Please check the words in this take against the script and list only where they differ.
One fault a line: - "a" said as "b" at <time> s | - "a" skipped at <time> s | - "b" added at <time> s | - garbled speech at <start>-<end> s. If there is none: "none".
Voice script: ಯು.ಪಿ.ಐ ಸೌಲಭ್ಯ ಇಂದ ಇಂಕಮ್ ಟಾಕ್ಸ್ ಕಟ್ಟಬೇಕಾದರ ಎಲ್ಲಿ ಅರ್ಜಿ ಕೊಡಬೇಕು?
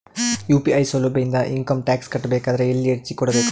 none